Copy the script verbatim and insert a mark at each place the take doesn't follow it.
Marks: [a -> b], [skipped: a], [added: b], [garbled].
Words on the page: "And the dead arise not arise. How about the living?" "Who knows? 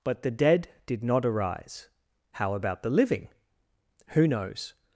["And -> But] the dead [arise -> did] not arise. How about the living?" "Who knows?